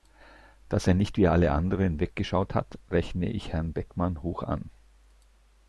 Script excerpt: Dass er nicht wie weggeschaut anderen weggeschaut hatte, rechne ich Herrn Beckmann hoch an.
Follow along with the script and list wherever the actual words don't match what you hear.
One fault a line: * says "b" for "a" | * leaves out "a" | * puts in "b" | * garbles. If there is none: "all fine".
* says "alle" for "weggeschaut"
* says "hat" for "hatte"